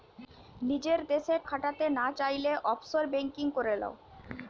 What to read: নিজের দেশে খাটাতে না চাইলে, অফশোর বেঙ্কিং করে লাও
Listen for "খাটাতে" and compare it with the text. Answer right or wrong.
right